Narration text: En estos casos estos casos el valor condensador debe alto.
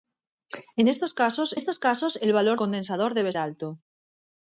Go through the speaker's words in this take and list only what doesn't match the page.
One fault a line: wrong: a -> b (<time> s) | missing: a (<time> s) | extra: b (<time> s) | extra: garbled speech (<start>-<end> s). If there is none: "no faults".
no faults